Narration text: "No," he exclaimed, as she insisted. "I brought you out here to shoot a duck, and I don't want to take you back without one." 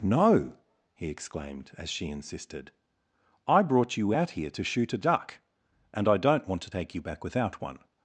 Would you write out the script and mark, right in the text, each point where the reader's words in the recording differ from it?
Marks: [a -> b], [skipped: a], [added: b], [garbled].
"No," he exclaimed, as she insisted. "I brought you out here to shoot a duck, and I don't want to take you back without one."